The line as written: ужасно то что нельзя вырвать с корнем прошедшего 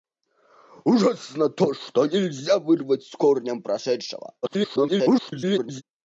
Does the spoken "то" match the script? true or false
true